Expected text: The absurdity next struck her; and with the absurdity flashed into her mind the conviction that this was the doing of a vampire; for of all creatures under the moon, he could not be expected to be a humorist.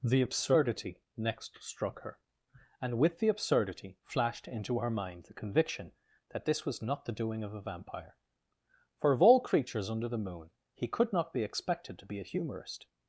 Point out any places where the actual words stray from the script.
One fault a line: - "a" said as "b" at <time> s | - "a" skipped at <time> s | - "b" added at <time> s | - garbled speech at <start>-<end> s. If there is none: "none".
- "not" added at 6.8 s